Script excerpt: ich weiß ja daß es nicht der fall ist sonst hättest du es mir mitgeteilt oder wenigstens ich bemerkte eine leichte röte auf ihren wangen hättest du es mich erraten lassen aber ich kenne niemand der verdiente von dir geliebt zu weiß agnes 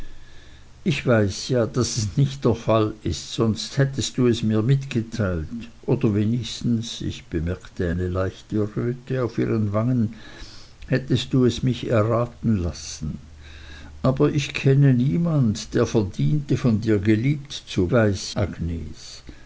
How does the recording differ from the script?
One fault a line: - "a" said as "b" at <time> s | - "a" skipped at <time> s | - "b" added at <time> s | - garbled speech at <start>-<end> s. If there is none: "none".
none